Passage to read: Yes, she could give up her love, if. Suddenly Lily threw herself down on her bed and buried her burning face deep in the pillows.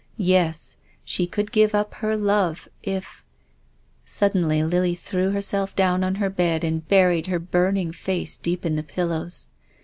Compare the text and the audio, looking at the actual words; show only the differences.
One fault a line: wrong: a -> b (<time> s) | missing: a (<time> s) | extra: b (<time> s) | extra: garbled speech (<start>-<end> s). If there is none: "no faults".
no faults